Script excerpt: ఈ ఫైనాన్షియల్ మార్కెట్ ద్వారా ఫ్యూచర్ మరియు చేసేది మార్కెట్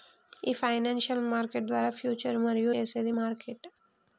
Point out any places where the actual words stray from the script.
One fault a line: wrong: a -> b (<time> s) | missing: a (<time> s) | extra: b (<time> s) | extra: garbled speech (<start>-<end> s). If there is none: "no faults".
no faults